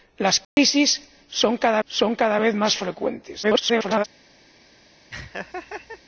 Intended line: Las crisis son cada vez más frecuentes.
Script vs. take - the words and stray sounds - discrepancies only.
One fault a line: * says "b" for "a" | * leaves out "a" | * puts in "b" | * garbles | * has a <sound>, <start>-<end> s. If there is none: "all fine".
* has a dropout, 0.4-0.6 s
* puts in "son cada"
* garbles
* has a laugh, 5.1-6.0 s